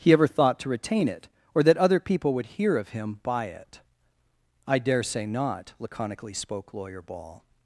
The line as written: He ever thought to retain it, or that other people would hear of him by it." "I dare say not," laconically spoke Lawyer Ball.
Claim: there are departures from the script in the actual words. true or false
false